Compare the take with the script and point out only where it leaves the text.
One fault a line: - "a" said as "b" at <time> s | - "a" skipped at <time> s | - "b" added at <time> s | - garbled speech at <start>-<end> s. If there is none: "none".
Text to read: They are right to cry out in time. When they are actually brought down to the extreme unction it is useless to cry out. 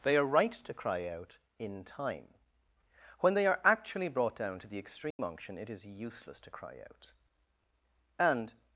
- "And" added at 8.2 s